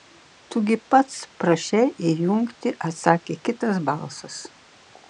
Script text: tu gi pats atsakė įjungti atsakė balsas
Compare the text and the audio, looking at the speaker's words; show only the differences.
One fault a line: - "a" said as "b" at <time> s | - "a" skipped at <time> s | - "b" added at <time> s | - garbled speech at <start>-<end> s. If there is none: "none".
- "atsakė" said as "prašei" at 1.4 s
- "kitas" added at 3.5 s